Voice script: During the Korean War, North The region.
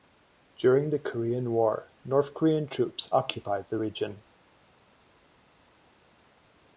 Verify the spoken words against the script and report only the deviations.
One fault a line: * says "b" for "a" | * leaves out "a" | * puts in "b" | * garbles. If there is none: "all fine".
* puts in "Korean troops occupied"